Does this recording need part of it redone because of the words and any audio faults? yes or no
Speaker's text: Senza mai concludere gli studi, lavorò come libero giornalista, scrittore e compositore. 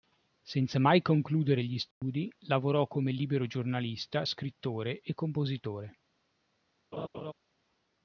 yes